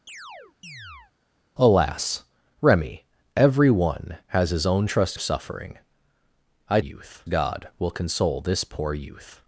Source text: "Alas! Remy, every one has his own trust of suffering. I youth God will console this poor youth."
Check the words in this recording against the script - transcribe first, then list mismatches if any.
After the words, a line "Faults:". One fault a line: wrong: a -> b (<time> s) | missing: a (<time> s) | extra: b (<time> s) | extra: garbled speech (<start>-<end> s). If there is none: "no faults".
"Alas! Remy, every one has his own trust of suffering. I youth God will console this poor youth."
Faults:
no faults